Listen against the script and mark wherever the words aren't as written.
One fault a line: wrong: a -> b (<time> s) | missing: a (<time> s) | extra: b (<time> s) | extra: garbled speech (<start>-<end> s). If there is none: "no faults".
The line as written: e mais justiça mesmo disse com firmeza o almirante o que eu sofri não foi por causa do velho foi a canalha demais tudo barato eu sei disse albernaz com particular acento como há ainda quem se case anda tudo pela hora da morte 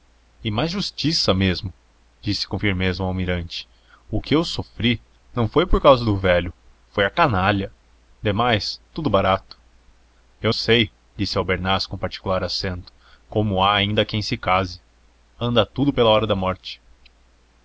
no faults